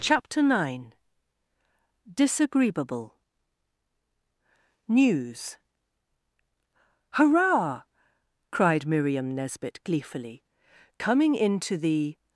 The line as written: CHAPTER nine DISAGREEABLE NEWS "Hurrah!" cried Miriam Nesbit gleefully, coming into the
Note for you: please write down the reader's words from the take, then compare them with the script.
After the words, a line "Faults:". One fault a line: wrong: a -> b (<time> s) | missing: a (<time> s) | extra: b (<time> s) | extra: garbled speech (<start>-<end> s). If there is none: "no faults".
CHAPTER nine DISAGREEABLE NEWS "Hurrah!" cried Miriam Nesbit gleefully, coming into the
Faults:
no faults